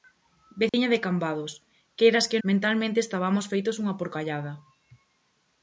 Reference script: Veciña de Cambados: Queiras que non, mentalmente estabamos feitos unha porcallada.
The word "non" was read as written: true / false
false